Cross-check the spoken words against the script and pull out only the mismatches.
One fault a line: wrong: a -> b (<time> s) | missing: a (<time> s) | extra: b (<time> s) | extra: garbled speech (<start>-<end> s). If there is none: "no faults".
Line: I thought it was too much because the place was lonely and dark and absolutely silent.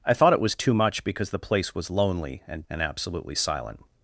missing: dark (2.6 s)